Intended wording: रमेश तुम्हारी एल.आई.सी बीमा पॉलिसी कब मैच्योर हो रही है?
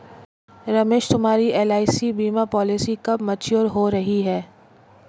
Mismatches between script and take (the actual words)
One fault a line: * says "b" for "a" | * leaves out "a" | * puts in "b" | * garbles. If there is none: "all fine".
all fine